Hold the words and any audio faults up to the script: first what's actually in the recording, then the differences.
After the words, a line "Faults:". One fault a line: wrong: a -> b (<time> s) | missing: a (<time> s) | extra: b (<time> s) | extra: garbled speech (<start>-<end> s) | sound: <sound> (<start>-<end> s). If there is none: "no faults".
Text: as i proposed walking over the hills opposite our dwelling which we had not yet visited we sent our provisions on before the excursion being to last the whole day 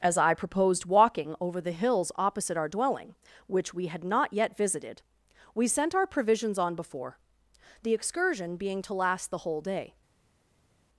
as i proposed walking over the hills opposite our dwelling which we had not yet visited we sent our provisions on before the excursion being to last the whole day
Faults:
no faults